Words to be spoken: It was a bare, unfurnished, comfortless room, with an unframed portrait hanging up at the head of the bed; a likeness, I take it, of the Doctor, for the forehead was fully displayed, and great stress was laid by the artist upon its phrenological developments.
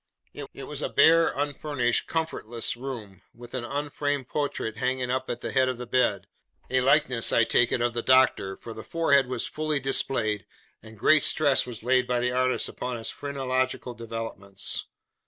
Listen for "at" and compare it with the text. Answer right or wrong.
right